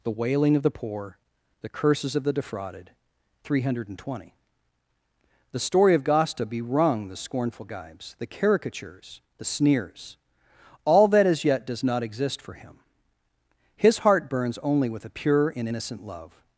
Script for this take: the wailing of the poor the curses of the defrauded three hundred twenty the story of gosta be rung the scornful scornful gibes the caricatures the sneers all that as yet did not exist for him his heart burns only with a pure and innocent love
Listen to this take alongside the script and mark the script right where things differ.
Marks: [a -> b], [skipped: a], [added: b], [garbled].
the wailing of the poor the curses of the defrauded three hundred twenty the story of gosta be rung the scornful [skipped: scornful] gibes the caricatures the sneers all that as yet [did -> does] not exist for him his heart burns only with a pure and innocent love